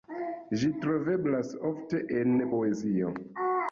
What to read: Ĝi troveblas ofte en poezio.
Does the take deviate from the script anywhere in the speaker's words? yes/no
no